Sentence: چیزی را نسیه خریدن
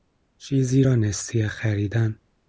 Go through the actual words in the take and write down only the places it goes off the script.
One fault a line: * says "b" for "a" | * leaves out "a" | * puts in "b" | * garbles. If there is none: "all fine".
all fine